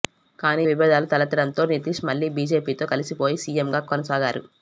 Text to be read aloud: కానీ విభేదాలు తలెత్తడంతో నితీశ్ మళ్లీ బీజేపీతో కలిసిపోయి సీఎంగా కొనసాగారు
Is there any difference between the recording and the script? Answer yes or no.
no